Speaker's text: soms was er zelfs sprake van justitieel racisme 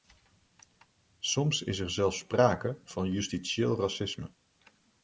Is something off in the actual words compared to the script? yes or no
yes